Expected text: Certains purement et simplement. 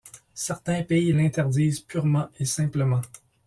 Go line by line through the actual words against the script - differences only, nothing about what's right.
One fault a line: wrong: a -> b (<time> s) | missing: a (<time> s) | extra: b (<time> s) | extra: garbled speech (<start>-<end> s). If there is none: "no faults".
extra: pays l'interdisent (0.8 s)